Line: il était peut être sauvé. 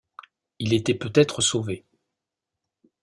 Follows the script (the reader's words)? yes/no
yes